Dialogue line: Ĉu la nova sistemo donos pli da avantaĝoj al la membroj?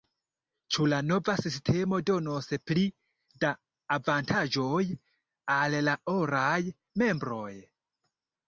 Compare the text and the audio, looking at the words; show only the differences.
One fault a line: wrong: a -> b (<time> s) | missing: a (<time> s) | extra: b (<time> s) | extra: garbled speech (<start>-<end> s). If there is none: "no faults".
extra: oraj (6.2 s)